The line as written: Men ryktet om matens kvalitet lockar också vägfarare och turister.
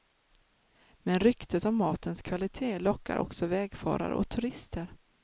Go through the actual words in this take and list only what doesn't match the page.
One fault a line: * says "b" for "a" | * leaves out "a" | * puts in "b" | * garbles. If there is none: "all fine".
all fine